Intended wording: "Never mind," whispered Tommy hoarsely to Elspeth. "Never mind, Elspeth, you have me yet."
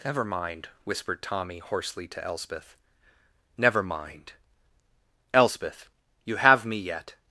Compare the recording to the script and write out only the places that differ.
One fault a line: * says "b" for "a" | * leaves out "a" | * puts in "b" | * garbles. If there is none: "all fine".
all fine